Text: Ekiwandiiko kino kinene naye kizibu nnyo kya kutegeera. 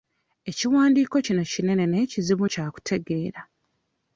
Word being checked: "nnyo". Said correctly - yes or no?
no